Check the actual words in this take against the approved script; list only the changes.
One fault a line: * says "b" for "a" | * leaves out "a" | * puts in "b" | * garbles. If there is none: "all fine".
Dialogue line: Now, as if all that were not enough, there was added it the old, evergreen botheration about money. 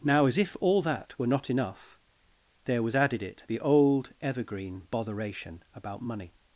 all fine